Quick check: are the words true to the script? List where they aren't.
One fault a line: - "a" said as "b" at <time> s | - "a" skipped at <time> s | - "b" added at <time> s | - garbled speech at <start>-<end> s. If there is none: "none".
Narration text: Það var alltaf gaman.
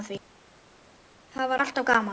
none